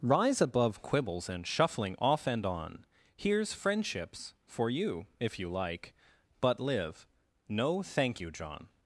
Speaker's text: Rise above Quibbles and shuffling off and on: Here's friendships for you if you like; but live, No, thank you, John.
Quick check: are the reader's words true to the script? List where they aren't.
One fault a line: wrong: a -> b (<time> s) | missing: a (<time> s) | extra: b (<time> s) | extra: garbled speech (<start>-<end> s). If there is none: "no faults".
no faults